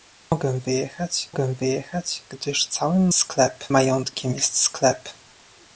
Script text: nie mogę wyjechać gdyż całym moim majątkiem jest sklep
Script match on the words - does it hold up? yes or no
no